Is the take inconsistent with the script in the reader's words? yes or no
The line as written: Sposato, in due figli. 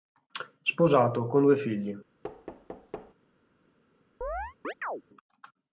yes